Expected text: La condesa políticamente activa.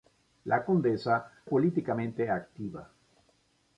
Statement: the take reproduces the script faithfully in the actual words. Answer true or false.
true